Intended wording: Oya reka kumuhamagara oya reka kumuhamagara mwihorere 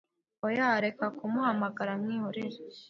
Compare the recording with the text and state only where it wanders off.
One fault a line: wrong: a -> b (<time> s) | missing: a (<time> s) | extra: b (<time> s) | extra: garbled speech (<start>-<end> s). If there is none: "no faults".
missing: oya reka kumuhamagara (1.9 s)